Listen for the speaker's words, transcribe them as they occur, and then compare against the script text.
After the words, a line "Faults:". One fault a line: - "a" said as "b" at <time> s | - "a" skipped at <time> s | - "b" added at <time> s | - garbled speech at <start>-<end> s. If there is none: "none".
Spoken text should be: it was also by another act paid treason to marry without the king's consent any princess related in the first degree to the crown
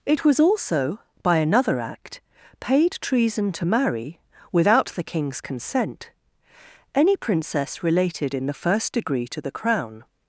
it was also by another act paid treason to marry without the king's consent any princess related in the first degree to the crown
Faults:
none